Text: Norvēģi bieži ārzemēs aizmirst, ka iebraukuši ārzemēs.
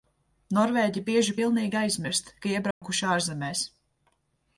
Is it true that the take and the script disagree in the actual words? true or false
true